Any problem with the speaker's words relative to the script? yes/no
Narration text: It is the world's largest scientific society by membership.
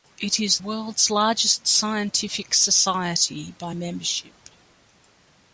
yes